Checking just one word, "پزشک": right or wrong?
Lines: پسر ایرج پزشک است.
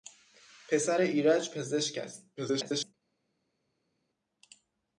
right